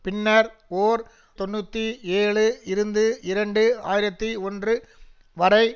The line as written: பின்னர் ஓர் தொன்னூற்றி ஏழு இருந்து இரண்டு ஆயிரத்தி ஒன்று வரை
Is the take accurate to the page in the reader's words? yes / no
yes